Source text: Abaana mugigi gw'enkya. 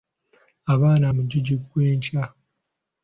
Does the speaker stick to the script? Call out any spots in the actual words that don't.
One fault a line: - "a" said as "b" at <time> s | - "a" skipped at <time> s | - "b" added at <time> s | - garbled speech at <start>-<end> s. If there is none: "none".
none